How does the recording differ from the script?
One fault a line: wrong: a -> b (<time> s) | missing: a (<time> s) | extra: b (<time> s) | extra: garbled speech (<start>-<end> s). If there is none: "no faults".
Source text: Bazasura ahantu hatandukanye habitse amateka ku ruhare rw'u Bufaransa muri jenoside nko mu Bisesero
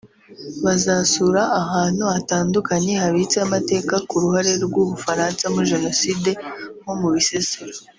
no faults